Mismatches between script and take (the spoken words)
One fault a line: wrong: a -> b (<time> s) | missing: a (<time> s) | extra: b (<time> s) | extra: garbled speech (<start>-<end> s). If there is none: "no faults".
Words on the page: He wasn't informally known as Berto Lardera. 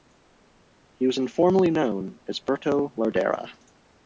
wrong: wasn't -> was (1.1 s)